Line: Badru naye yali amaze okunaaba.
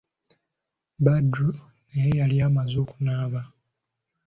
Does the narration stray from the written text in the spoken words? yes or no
no